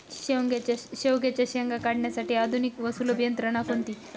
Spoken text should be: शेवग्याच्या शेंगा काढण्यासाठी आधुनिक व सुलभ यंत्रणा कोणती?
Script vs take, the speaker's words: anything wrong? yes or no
no